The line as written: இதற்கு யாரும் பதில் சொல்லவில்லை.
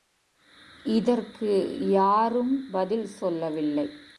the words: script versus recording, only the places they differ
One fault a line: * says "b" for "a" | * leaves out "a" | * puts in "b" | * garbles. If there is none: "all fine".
all fine